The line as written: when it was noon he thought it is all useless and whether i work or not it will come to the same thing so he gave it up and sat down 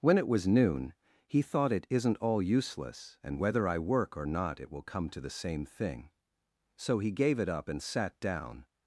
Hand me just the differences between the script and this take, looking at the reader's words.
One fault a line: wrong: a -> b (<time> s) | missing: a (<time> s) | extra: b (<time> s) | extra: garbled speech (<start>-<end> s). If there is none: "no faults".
wrong: is -> isn't (1.9 s)